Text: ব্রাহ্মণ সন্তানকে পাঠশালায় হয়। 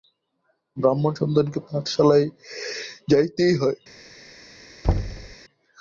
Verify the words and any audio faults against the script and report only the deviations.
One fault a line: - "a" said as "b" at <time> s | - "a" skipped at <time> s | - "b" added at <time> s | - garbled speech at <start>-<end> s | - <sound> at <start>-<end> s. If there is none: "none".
- "যাইতেই" added at 3.1 s
- thud at 4.8-5.4 s